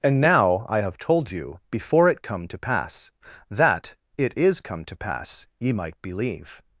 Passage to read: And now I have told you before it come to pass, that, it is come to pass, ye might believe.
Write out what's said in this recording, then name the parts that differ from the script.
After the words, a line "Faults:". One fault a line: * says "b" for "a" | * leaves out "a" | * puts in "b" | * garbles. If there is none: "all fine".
And now I have told you before it come to pass, that, it is come to pass, ye might believe.
Faults:
all fine